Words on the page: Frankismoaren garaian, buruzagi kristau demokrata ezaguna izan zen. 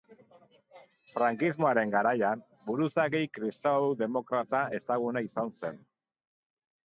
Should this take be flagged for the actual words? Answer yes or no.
no